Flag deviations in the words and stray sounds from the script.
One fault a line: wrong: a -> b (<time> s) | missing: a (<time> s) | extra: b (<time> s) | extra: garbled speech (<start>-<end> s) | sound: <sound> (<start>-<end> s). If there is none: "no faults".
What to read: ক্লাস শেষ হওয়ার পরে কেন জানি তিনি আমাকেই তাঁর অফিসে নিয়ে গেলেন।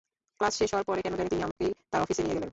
sound: dropout (1.5-1.6 s)